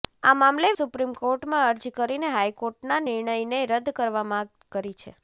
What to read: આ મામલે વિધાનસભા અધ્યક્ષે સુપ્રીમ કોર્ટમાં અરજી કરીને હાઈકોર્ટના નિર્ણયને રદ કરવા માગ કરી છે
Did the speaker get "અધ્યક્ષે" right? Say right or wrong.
wrong